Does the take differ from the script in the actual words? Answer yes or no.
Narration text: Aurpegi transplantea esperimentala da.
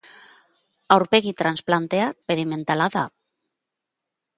no